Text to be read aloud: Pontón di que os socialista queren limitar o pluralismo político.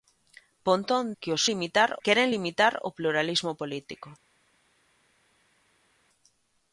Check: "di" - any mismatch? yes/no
yes